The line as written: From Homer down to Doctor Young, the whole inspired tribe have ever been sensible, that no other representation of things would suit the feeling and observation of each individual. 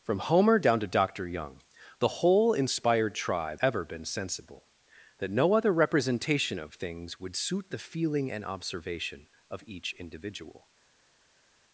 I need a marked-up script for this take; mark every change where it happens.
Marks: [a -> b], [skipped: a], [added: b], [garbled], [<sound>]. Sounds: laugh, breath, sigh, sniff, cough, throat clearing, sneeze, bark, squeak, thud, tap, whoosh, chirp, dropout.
From Homer down to Doctor Young, the whole inspired tribe [skipped: have] ever been sensible, that no other representation of things would suit the feeling and observation of each individual.